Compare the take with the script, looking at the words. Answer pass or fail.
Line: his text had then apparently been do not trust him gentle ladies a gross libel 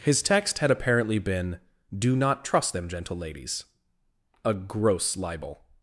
fail